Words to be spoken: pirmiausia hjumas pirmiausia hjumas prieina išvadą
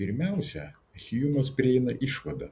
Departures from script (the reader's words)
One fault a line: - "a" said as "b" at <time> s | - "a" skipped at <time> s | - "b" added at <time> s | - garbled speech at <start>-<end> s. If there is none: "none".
- "pirmiausia hjumas" skipped at 1.5 s